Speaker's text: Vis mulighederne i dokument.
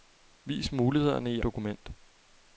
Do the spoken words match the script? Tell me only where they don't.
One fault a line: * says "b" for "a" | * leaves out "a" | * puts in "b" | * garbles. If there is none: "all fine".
all fine